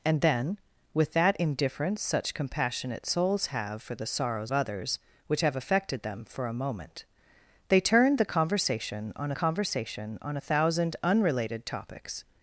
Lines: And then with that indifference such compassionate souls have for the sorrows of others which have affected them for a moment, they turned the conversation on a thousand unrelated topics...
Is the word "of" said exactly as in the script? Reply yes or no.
no